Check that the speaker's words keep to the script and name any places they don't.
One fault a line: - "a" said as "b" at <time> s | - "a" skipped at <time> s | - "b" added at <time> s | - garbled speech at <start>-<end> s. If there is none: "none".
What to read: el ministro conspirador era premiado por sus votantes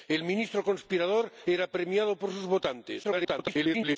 - garbled speech at 3.0-4.0 s